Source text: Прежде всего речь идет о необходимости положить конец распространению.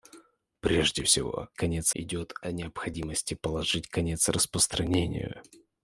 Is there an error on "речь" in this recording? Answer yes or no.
yes